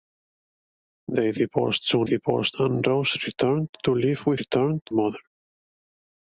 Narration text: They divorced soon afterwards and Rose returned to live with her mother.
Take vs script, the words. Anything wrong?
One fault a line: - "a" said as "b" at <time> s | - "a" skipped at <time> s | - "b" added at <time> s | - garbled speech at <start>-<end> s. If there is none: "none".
- "afterwards" said as "divorced" at 2.0 s
- "her" said as "returned" at 4.4 s